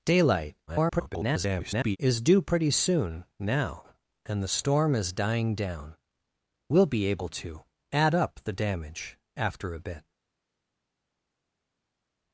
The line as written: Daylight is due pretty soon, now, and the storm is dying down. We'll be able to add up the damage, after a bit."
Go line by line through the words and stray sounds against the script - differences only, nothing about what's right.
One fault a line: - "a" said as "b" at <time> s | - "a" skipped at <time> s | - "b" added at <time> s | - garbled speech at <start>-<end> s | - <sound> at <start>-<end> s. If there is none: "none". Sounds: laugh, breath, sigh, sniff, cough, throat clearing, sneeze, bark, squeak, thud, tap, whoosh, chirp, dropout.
- garbled speech at 0.7-2.0 s